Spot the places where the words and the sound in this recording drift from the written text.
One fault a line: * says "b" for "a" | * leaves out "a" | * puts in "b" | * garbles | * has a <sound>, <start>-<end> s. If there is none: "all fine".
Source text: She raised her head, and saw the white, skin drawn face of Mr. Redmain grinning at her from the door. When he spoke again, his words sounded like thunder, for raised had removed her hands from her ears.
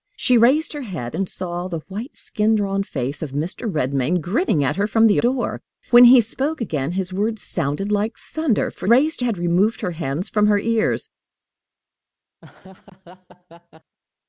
* has a laugh, 12.4-14.0 s